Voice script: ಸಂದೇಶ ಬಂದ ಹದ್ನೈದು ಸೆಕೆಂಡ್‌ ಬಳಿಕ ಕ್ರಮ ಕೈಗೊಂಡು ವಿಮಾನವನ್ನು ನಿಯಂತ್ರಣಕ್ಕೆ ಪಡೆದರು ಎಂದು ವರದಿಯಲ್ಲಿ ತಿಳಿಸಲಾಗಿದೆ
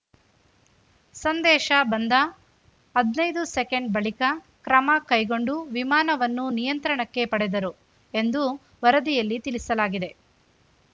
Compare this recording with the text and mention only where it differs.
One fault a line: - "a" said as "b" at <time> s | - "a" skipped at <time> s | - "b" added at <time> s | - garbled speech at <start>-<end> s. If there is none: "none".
none